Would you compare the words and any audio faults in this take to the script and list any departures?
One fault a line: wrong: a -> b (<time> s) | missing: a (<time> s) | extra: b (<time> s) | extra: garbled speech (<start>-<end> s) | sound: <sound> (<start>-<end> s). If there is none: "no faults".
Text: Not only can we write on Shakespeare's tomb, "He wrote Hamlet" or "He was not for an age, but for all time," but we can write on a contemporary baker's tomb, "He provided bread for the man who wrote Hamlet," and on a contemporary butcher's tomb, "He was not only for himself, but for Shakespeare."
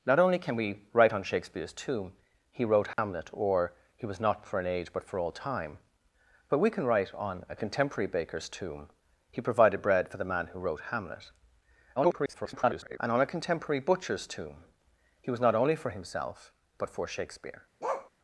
sound: dropout (2.9-3.0 s)
extra: garbled speech (12.0-13.0 s)
sound: bark (17.8-18.1 s)